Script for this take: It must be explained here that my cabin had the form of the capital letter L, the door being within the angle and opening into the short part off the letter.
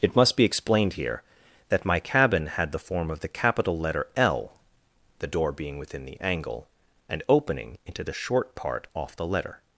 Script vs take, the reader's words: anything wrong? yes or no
no